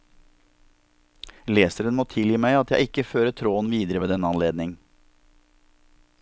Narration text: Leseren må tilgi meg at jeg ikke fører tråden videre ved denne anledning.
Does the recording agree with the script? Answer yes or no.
yes